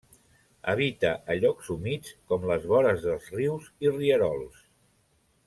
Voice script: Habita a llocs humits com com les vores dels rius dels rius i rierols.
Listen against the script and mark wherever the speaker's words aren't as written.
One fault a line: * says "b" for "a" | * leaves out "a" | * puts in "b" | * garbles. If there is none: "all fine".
* leaves out "com"
* leaves out "dels rius"